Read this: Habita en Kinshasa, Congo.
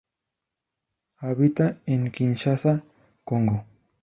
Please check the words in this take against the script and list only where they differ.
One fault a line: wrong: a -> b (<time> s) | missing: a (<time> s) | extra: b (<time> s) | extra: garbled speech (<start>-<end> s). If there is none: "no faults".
no faults